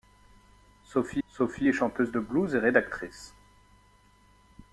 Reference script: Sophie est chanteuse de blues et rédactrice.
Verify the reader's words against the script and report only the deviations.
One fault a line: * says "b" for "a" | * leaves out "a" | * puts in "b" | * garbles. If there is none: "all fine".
* puts in "sophie"